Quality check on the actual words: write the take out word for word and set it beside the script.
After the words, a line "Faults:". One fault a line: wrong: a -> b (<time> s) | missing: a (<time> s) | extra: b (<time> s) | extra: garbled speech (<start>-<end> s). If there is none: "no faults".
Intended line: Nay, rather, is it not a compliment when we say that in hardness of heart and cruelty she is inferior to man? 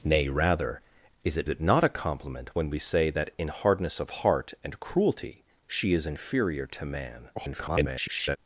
Nay, rather, is it it not a compliment when we say that in hardness of heart and cruelty she is inferior to man? [garbled]
Faults:
extra: it (1.5 s)
extra: garbled speech (7.4-8.4 s)